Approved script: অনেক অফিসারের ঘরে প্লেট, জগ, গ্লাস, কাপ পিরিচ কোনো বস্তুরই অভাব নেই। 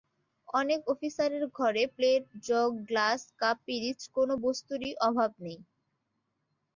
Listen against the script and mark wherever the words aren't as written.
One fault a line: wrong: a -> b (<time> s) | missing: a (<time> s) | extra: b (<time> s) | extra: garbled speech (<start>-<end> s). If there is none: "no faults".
no faults